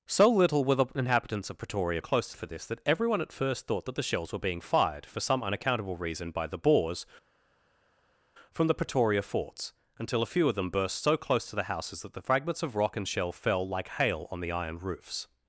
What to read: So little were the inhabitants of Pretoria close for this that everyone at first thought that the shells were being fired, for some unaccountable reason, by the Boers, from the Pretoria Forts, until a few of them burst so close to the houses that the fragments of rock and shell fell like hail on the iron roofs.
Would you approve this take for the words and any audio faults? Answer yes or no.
yes